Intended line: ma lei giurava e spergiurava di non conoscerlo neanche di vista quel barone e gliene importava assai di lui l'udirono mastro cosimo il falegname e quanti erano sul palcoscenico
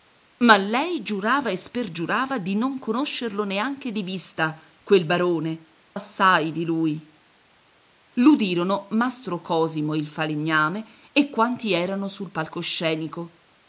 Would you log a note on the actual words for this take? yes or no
yes